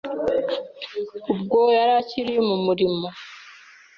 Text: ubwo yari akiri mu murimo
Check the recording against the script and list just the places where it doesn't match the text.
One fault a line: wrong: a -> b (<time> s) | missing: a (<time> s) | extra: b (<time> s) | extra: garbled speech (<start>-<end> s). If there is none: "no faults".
no faults